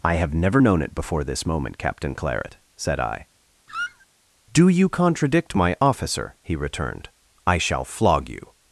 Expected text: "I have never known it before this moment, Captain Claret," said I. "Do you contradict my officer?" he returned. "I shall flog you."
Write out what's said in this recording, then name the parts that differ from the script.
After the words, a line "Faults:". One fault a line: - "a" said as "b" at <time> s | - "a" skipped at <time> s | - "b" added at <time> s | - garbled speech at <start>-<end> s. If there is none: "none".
"I have never known it before this moment, Captain Claret," said I. "Do you contradict my officer?" he returned. "I shall flog you."
Faults:
none